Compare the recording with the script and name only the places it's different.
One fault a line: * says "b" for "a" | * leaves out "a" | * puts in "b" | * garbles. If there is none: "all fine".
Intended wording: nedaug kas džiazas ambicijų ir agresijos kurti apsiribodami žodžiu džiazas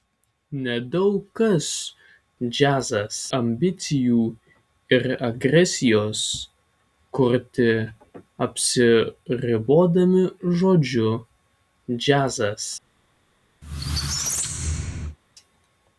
all fine